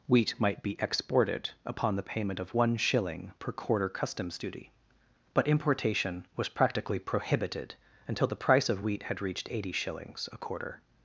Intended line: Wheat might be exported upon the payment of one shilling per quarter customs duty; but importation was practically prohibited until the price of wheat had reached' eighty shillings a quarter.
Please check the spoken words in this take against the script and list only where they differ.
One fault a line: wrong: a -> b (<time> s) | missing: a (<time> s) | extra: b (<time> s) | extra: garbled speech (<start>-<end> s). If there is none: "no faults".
no faults